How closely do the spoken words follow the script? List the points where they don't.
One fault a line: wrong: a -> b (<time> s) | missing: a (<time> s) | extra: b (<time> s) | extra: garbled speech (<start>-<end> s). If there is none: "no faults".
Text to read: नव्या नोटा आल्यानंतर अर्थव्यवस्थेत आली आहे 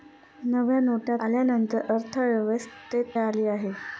no faults